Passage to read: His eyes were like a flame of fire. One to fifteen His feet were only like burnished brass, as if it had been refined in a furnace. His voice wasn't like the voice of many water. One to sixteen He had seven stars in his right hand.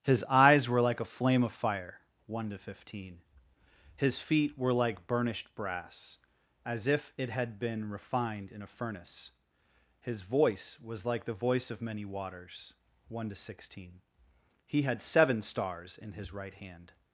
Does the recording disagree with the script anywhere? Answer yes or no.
yes